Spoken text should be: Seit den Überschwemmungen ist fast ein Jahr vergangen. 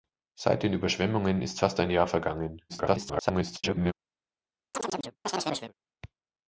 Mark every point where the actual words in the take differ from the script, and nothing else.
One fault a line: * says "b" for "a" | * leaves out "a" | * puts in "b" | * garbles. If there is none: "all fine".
* garbles